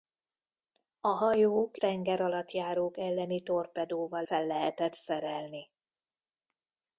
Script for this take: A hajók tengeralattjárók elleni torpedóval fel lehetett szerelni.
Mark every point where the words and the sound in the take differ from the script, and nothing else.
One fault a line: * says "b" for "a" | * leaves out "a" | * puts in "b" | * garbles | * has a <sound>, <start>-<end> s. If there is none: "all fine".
all fine